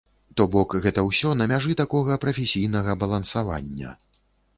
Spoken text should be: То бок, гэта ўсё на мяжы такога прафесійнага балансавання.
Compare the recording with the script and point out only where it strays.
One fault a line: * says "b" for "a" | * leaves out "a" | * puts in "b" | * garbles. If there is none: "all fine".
all fine